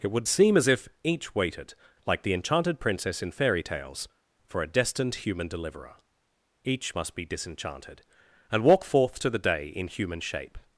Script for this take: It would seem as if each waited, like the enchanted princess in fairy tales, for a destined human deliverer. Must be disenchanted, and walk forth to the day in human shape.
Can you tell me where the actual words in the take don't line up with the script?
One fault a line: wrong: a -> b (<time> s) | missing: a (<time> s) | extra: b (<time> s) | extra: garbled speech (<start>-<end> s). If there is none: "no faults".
extra: Each (6.6 s)